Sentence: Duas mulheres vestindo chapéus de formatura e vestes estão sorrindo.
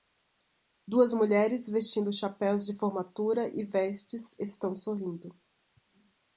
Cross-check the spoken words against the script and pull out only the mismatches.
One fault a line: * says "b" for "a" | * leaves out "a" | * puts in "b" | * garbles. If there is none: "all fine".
all fine